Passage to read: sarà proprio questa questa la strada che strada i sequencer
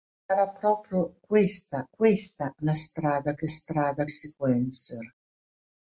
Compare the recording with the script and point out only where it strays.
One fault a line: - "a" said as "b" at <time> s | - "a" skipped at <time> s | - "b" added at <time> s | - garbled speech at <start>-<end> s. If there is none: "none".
none